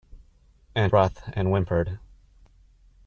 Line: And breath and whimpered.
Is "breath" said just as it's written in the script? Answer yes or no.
yes